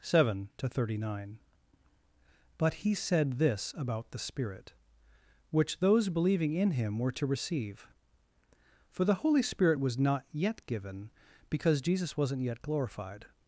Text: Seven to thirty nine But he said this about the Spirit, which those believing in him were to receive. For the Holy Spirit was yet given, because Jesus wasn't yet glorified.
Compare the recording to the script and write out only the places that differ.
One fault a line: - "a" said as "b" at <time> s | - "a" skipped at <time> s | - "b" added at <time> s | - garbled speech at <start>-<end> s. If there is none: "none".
- "not" added at 10.0 s